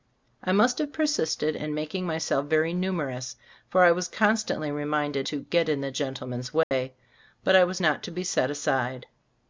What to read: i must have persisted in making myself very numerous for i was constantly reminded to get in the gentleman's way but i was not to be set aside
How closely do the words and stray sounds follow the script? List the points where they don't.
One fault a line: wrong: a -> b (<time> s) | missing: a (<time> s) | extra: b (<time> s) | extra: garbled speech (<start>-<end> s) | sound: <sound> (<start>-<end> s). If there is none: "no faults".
sound: dropout (6.6-6.7 s)